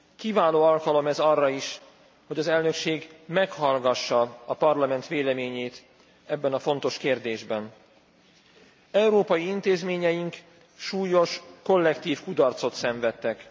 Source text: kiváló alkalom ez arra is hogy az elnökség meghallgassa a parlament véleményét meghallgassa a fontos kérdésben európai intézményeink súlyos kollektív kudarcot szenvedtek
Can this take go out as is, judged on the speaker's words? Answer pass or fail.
fail